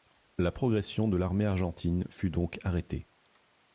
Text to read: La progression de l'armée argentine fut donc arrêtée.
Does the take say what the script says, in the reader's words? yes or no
yes